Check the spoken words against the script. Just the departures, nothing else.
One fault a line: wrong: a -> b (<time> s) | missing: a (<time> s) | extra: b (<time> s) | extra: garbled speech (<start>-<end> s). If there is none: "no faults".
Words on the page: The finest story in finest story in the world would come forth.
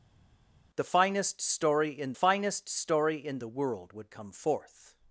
no faults